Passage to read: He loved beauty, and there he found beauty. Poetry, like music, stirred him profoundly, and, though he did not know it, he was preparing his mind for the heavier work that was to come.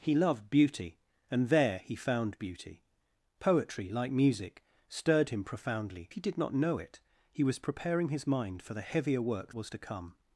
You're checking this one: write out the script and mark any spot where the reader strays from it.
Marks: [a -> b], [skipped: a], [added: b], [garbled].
He loved beauty, and there he found beauty. Poetry, like music, stirred him profoundly, [skipped: and, though] he did not know it, he was preparing his mind for the heavier work [skipped: that] was to come.